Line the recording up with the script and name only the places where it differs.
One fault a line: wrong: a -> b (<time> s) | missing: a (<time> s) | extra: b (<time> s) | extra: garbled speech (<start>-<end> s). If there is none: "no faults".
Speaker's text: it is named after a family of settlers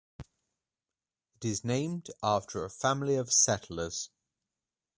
no faults